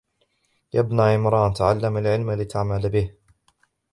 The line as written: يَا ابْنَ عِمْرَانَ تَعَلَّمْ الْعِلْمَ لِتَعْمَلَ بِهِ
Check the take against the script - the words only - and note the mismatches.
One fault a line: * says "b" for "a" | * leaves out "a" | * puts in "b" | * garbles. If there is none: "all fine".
all fine